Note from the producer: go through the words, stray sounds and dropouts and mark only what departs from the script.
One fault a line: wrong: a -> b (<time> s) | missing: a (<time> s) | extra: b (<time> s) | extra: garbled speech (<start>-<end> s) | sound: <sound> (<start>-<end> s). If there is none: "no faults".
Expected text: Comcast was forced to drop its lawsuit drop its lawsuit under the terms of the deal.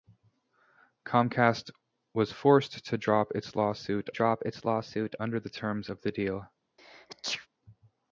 sound: sneeze (6.8-7.5 s)